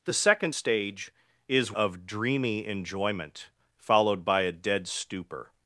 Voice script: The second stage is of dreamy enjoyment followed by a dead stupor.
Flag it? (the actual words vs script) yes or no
no